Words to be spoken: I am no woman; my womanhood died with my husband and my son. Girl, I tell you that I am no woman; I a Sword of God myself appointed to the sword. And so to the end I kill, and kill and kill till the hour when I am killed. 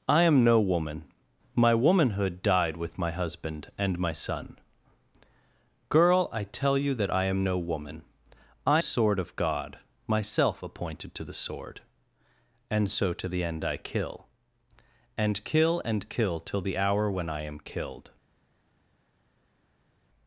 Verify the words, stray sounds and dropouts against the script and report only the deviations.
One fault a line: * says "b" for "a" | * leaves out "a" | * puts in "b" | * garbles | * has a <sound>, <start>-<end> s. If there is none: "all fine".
all fine